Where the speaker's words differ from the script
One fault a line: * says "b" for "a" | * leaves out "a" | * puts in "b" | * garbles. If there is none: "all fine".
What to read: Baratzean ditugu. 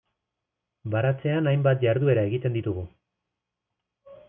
* puts in "hainbat jarduera egiten"